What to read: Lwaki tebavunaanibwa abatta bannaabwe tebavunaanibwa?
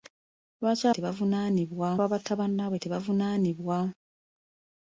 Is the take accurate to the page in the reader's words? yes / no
yes